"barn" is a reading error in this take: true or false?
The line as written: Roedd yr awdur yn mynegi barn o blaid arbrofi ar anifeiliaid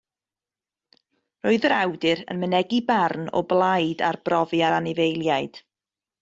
false